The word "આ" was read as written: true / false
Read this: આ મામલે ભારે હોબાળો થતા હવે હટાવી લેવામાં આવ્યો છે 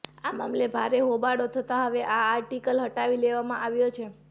true